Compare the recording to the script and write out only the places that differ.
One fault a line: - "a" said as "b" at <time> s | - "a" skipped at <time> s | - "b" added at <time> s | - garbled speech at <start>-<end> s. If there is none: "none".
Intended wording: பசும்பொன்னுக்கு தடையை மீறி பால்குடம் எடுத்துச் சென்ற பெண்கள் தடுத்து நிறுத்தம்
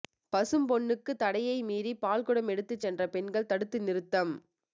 none